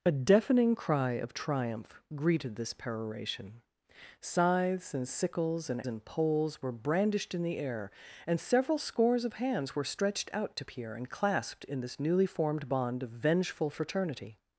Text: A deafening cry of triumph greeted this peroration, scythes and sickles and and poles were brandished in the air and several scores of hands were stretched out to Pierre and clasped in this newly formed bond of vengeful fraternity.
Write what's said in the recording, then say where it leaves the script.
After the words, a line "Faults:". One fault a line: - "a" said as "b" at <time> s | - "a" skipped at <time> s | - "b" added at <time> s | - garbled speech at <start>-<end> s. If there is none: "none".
A deafening cry of triumph greeted this peroration, scythes and sickles and and poles were brandished in the air and several scores of hands were stretched out to Pierre and clasped in this newly formed bond of vengeful fraternity.
Faults:
none